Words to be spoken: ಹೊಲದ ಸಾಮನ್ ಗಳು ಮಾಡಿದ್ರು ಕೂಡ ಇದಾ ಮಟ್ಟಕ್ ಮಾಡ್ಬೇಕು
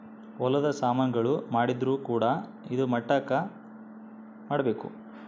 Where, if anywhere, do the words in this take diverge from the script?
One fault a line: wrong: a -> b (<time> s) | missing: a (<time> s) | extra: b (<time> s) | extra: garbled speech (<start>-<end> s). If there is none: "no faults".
no faults